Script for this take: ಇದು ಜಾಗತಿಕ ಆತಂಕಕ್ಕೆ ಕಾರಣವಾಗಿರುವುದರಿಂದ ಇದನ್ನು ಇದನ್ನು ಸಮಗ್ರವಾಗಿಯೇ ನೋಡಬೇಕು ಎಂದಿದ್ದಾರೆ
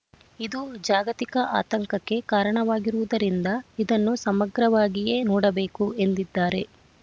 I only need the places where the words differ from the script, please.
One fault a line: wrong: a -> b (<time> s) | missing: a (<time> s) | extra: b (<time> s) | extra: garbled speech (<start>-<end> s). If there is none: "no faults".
missing: ಇದನ್ನು (4.2 s)